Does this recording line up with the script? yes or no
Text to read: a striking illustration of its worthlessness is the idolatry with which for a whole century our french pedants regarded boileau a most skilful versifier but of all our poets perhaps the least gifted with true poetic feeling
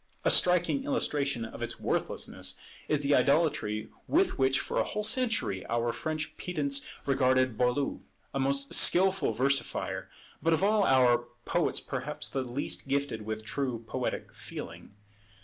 yes